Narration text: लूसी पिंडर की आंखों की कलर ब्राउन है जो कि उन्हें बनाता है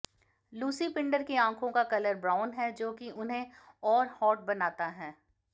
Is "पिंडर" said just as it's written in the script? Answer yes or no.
yes